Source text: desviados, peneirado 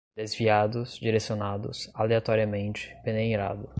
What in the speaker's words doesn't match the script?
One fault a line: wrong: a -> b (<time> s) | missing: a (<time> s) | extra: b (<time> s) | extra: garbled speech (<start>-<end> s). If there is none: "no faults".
extra: direcionados aleatoriamente (1.0 s)